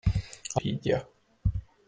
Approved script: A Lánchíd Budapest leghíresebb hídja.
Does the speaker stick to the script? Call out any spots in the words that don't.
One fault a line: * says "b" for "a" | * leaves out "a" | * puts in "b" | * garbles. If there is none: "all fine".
* leaves out "Lánchíd Budapest leghíresebb"